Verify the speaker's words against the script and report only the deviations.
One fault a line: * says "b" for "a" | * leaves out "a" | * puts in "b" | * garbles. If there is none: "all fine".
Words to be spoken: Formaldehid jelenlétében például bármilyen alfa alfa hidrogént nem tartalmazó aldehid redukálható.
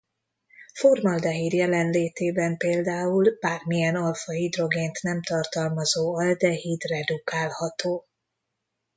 * leaves out "alfa"